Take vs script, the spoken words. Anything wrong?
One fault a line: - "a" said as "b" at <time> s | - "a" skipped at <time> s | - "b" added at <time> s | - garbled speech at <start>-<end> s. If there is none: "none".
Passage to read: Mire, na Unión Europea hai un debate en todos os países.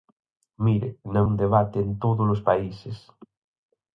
- "Unión Europea hai" skipped at 1.2 s